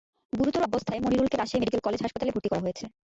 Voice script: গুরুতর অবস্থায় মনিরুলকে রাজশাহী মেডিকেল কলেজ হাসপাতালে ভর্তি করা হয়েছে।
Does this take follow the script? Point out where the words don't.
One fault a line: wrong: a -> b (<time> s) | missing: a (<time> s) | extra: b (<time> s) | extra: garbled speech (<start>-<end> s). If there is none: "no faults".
no faults